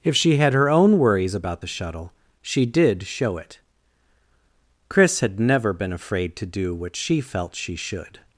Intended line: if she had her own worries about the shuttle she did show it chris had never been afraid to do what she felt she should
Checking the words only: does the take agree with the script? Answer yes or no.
yes